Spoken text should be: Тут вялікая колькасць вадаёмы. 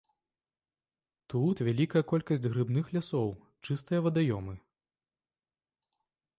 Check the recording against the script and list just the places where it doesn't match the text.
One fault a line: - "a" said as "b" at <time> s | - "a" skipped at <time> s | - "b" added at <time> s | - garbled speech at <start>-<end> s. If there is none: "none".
- "грыбных лясоў чыстыя" added at 2.6 s